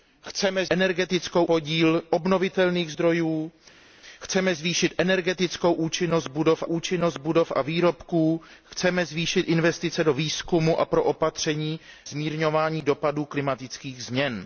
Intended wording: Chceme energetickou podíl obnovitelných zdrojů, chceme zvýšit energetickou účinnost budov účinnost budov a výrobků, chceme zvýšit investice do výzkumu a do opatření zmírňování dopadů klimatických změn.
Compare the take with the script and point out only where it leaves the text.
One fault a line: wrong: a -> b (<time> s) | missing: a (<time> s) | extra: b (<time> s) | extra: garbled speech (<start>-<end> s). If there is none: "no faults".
no faults